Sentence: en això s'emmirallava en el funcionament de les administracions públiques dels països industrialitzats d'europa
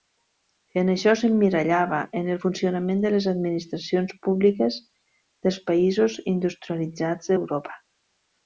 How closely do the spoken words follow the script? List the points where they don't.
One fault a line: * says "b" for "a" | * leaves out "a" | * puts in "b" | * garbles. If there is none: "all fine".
all fine